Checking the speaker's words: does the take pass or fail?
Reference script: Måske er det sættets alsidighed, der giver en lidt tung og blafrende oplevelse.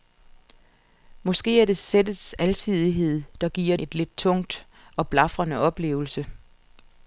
pass